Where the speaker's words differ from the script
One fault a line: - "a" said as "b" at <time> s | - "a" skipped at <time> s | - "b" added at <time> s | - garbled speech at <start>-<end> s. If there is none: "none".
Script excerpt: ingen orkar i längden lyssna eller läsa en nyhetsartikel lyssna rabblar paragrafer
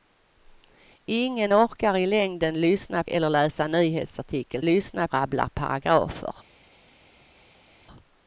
none